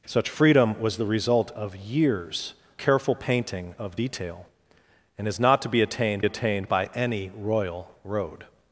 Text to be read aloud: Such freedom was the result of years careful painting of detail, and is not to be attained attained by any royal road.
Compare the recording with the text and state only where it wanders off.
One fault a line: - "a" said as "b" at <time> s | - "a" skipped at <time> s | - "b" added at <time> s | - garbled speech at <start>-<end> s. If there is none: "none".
none